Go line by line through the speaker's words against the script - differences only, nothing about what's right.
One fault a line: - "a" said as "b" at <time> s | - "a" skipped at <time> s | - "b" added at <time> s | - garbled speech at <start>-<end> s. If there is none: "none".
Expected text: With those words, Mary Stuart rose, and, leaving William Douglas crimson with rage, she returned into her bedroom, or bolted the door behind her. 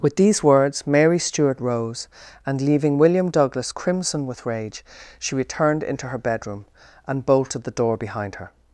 - "those" said as "these" at 0.1 s
- "or" said as "and" at 7.1 s